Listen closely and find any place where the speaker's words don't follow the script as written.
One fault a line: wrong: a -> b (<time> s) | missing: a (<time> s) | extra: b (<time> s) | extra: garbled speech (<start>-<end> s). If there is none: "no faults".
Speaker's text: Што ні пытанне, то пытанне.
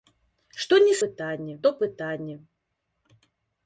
no faults